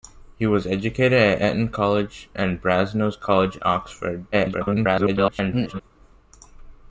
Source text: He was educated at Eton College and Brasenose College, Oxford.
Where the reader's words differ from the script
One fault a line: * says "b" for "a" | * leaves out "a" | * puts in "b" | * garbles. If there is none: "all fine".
* garbles